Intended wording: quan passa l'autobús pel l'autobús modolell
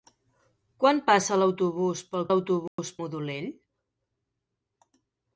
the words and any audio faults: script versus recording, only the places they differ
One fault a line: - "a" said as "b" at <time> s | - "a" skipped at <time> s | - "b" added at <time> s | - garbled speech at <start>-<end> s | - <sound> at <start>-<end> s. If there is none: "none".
- dropout at 2.7-2.8 s